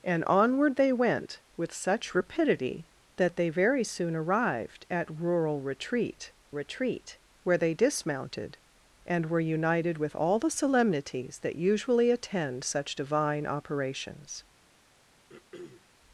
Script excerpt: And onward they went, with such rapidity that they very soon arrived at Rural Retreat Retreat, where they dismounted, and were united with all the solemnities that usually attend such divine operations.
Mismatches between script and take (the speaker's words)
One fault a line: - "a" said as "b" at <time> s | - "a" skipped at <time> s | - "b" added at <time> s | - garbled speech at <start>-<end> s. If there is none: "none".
none